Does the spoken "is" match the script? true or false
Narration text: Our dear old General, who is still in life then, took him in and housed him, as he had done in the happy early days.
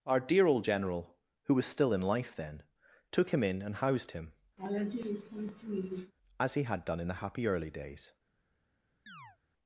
false